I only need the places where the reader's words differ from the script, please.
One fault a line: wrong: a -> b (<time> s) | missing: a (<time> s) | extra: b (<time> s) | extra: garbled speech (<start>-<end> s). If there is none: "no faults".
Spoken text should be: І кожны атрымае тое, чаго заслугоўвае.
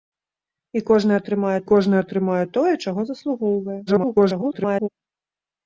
extra: кожны атрымае (1.7 s)
extra: garbled speech (3.9-4.9 s)